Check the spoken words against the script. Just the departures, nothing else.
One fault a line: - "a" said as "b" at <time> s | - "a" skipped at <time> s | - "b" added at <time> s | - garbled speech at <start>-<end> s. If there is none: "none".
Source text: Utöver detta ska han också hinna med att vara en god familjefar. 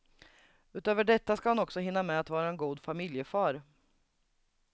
none